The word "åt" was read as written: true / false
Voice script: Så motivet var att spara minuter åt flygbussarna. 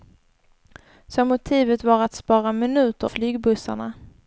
false